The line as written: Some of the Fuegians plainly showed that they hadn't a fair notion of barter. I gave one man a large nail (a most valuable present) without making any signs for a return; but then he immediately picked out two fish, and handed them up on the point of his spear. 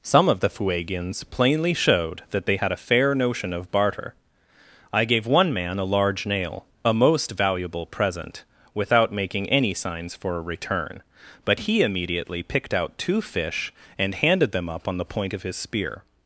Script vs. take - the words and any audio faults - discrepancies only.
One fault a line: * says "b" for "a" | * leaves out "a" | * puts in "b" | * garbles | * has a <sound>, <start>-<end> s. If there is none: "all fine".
* says "had" for "hadn't"
* leaves out "then"